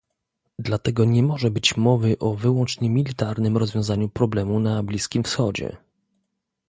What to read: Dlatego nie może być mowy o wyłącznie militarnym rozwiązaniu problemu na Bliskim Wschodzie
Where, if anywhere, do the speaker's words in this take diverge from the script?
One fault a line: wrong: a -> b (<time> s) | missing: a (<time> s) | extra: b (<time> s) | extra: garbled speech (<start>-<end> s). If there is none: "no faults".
no faults